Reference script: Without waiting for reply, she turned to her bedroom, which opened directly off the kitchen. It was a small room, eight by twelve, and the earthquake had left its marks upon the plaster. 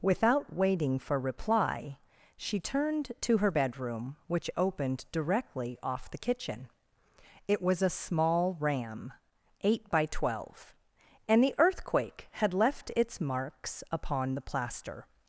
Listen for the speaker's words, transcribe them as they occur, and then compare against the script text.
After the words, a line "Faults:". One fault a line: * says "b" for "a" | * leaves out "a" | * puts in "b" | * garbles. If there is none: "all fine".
Without waiting for reply, she turned to her bedroom, which opened directly off the kitchen. It was a small ram, eight by twelve, and the earthquake had left its marks upon the plaster.
Faults:
* says "ram" for "room"